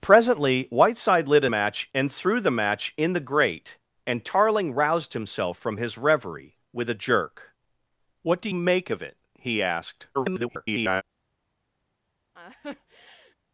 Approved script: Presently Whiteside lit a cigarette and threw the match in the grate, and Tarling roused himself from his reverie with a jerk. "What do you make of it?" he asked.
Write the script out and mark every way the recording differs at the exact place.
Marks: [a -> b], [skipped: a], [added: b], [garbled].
Presently Whiteside lit a [cigarette -> match] and threw the match in the grate, and Tarling roused himself from his reverie with a jerk. "What do [skipped: you] make of it?" he asked. [garbled]